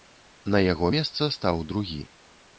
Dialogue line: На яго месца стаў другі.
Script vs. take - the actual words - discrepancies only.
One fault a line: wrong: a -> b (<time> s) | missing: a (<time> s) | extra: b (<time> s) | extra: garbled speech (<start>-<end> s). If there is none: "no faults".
no faults